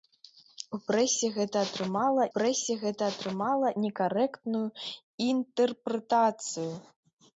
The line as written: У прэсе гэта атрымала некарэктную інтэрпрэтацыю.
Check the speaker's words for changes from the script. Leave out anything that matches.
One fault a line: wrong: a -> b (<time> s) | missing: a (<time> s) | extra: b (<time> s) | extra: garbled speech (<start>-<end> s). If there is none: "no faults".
extra: прэсе гэта атрымала (2.3 s)